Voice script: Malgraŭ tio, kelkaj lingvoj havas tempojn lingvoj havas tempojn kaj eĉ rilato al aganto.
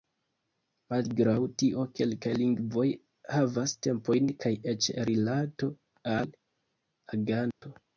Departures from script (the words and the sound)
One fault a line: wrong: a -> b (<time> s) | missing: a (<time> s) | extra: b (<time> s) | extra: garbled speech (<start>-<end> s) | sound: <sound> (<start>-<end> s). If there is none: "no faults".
missing: lingvoj havas tempojn (4.3 s)
sound: dropout (7.5-7.6 s)